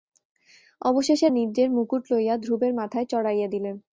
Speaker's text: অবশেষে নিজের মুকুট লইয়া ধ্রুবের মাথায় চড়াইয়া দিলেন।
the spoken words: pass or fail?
pass